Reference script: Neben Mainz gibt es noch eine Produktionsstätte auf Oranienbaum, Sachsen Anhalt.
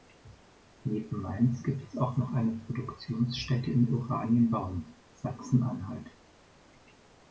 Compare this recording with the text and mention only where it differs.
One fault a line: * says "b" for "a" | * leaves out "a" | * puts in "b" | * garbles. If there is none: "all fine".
* puts in "auch"
* says "in" for "auf"